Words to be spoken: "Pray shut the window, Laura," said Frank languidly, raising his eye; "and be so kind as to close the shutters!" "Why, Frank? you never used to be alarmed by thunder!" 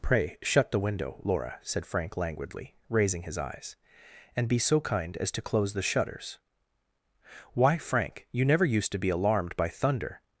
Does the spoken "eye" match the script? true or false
false